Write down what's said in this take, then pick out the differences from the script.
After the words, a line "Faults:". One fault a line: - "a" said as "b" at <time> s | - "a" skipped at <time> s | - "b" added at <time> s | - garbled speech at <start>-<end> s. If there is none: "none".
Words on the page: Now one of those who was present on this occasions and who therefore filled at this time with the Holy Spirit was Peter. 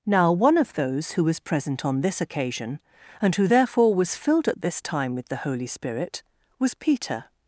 Now one of those who was present on this occasion and who therefore was filled at this time with the Holy Spirit was Peter.
Faults:
- "occasions" said as "occasion" at 2.2 s
- "was" added at 3.9 s